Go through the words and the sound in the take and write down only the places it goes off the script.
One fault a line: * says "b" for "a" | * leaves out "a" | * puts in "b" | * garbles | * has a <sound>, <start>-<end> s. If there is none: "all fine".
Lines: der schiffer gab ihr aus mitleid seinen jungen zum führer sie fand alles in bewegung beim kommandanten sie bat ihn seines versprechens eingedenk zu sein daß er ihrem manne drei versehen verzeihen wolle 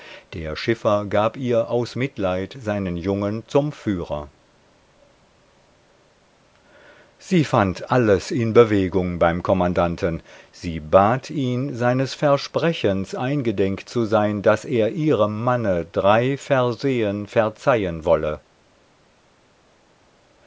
all fine